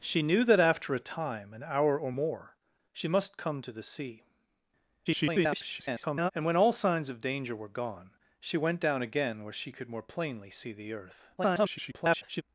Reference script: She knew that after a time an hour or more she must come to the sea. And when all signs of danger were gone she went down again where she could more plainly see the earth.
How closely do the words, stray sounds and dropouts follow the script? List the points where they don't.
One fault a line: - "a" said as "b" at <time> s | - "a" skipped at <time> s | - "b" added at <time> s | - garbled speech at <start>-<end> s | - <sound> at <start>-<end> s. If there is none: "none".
- garbled speech at 5.1-6.3 s
- garbled speech at 11.4-12.4 s